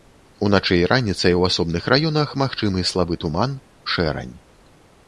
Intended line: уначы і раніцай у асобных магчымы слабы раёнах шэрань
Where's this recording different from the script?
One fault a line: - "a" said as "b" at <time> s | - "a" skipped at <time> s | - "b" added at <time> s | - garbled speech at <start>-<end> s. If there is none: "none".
- "раёнах" added at 1.9 s
- "раёнах" said as "туман" at 3.3 s